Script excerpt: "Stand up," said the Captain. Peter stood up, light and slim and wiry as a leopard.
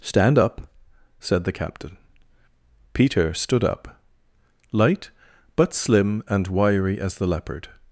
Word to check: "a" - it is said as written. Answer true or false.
false